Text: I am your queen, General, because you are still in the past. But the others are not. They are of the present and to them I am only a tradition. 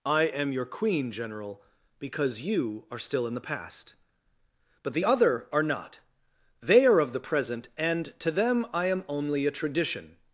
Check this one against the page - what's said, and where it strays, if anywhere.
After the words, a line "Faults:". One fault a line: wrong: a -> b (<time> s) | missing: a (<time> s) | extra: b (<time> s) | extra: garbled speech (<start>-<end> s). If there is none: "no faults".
I am your queen, General, because you are still in the past. But the other are not. They are of the present and to them I am only a tradition.
Faults:
wrong: others -> other (5.0 s)